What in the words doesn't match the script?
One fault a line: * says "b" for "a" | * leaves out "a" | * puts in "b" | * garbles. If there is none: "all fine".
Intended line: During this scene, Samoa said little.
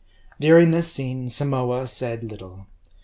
all fine